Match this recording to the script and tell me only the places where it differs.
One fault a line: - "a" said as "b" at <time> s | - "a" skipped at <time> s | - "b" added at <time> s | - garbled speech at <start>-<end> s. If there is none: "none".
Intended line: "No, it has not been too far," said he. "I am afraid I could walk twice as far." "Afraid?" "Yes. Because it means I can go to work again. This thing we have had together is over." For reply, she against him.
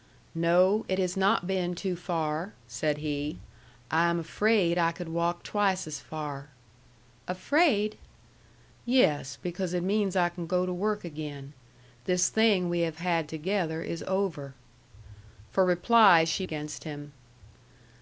none